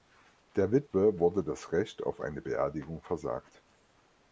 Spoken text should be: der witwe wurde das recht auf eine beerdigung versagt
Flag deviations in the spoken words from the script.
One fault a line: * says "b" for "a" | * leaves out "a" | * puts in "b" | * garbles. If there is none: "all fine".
all fine